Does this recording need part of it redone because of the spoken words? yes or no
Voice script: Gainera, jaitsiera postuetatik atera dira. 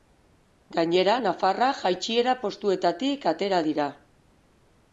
yes